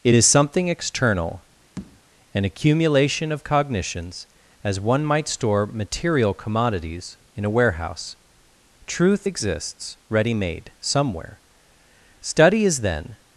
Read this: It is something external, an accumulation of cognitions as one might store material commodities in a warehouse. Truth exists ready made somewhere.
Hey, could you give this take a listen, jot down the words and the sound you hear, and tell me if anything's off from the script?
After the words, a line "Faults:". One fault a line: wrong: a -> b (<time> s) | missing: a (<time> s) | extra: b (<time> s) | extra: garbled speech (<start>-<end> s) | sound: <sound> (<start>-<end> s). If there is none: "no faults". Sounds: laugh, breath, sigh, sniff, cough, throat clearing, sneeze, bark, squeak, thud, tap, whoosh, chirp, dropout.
It is something external, an accumulation of cognitions as one might store material commodities in a warehouse. Truth exists ready made somewhere. Study is then
Faults:
sound: tap (1.8-2.0 s)
extra: Study is then (12.2 s)